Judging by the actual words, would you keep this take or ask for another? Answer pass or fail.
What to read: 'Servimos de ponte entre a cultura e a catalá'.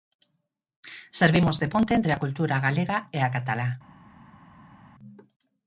fail